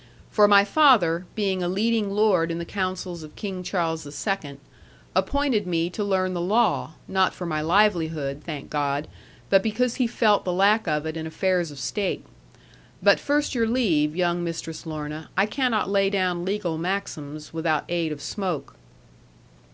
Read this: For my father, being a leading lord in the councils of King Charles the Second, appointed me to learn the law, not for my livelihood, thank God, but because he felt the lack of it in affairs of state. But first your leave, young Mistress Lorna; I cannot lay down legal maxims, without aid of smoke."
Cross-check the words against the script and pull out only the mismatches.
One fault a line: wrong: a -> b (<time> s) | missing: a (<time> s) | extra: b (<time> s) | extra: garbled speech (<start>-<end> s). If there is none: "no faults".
no faults